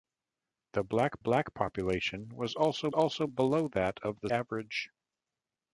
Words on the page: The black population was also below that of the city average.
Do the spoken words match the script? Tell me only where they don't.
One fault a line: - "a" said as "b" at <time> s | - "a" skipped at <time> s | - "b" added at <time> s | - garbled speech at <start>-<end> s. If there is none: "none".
- "black" added at 1.2 s
- "also" added at 2.9 s
- "city" skipped at 4.3 s